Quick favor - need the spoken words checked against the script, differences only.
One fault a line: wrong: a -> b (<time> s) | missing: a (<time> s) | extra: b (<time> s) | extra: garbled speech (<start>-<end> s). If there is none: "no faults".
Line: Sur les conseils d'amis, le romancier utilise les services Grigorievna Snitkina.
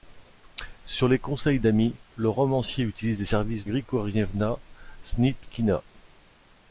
no faults